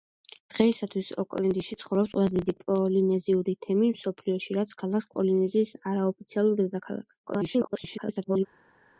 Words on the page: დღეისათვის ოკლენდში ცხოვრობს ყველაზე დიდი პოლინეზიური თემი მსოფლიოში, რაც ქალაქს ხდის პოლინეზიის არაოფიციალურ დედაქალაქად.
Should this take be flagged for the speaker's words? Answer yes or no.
yes